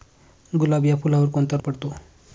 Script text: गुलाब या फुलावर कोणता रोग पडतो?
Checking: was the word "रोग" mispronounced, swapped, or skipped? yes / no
yes